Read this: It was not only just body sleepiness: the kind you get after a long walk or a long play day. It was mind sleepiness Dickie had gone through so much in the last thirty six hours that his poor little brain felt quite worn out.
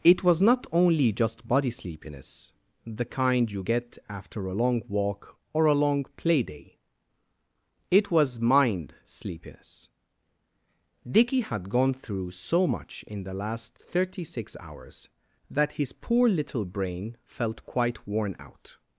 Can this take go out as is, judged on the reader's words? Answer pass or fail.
pass